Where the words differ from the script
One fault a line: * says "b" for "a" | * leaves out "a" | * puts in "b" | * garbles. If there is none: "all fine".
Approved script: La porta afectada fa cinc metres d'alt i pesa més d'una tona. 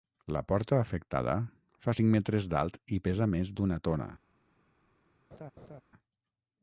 all fine